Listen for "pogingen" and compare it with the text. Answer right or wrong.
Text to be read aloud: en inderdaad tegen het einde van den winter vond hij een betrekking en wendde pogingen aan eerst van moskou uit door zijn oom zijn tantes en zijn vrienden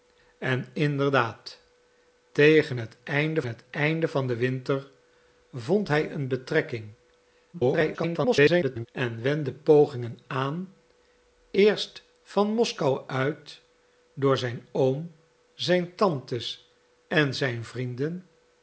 right